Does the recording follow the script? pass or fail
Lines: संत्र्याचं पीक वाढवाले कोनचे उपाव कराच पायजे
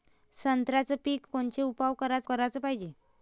fail